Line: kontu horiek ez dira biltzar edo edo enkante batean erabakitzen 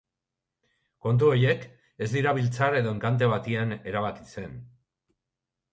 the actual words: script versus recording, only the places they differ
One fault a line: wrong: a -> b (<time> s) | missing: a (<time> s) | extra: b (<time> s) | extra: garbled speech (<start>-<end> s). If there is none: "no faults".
missing: edo (3.0 s)